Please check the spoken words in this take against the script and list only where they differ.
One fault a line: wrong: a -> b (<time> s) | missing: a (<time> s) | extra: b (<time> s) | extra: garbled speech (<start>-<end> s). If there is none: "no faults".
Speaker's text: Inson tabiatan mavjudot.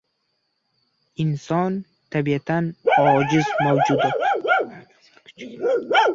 extra: ojiz (3.0 s)